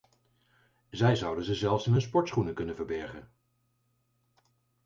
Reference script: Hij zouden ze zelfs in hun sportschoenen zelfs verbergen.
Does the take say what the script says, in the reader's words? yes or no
no